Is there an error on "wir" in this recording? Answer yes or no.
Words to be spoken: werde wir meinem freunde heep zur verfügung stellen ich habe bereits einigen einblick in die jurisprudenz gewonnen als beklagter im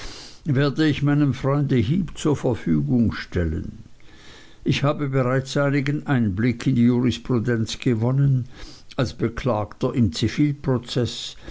yes